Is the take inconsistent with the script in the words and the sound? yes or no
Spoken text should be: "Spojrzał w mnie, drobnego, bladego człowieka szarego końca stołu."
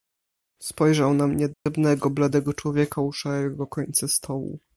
yes